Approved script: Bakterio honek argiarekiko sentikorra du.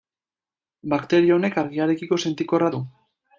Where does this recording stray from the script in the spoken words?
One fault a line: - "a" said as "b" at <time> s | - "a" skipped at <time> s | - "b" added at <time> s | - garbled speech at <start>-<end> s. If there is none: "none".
none